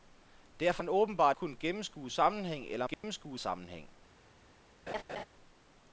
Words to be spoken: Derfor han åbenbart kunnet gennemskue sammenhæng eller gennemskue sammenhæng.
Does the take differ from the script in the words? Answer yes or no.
no